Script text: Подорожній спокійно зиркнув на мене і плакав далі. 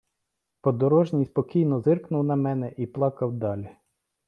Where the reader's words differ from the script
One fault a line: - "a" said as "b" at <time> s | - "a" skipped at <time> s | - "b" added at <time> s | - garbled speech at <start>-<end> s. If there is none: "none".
none